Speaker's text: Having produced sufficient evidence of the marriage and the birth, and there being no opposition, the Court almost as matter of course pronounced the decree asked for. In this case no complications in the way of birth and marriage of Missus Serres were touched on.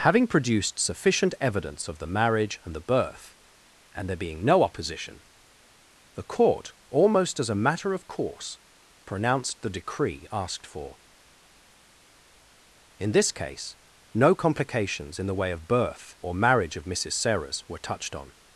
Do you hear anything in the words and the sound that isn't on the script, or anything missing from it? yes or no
yes